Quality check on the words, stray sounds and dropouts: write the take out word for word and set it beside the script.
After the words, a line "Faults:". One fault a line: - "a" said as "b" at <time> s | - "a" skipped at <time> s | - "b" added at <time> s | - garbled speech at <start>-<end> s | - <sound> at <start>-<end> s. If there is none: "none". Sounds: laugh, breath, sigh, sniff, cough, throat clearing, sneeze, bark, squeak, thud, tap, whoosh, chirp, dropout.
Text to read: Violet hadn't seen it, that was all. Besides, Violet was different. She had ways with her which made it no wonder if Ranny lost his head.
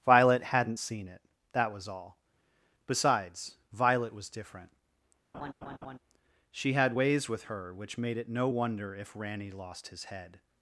Violet hadn't seen it, that was all. Besides, Violet was different. She had ways with her which made it no wonder if Ranny lost his head.
Faults:
- laugh at 5.3-6.0 s